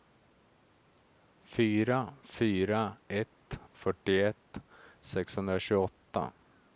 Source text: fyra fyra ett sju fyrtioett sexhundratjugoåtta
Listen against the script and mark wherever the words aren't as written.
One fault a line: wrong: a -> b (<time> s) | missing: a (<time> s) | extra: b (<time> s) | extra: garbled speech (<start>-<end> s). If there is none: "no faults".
missing: sju (3.6 s)